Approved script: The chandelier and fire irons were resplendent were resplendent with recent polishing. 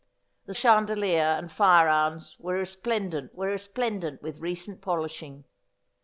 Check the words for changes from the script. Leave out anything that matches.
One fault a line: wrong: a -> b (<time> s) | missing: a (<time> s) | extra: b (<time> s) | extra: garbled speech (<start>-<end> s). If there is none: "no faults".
no faults